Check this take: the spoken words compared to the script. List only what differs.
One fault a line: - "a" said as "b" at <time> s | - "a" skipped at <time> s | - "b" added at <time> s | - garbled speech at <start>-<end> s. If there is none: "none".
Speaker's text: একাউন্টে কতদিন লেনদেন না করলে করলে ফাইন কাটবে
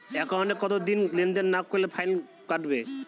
- "করলে" skipped at 1.9 s